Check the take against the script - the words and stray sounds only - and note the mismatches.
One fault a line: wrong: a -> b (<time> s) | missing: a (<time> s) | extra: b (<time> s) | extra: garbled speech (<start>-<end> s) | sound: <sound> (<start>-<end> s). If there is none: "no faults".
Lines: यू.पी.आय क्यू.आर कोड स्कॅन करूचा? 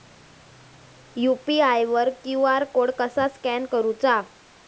extra: वर (1.9 s)
extra: कसा (3.0 s)